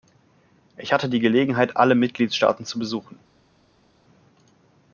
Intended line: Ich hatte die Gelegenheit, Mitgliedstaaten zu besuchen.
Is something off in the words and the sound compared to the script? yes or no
yes